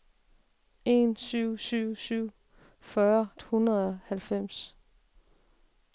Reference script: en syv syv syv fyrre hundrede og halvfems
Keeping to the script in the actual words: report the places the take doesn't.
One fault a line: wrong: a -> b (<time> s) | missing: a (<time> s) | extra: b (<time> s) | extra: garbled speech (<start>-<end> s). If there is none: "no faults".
no faults